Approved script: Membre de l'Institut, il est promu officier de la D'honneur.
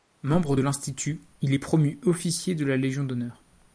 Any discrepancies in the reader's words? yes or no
yes